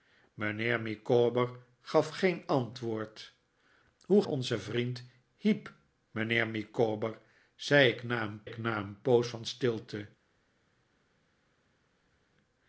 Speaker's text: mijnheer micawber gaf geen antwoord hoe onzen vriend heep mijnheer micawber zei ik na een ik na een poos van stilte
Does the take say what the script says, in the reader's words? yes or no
yes